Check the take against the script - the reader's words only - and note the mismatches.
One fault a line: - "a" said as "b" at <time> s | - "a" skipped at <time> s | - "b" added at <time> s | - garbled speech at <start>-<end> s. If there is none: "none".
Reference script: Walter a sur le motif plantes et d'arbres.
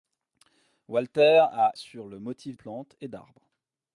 none